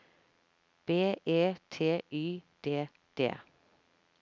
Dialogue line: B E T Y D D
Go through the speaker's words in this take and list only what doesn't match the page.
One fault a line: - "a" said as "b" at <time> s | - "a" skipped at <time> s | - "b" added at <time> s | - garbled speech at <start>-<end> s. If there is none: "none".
none